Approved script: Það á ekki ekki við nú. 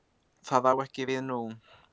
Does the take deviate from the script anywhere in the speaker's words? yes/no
yes